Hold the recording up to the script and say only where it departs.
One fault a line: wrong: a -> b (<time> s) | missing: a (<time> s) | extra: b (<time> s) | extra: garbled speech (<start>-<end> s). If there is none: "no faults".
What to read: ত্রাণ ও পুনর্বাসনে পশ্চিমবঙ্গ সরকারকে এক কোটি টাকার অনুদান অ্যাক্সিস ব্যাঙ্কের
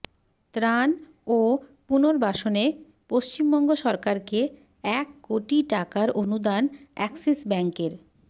no faults